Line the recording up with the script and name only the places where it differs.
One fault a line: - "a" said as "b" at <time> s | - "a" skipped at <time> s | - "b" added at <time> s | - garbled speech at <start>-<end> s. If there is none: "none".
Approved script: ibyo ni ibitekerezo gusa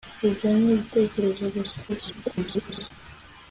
- garbled speech at 1.9-2.9 s